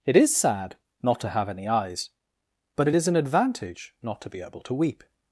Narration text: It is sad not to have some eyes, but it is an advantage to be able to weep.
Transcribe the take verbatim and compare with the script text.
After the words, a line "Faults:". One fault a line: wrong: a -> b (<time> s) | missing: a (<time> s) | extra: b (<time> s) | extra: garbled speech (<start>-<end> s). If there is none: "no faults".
It is sad not to have any eyes, but it is an advantage not to be able to weep.
Faults:
wrong: some -> any (1.5 s)
extra: not (4.0 s)